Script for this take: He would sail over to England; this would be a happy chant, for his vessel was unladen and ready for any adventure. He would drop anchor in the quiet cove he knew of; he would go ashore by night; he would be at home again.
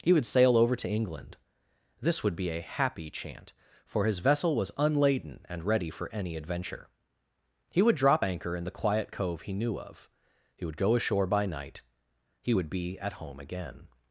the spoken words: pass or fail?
pass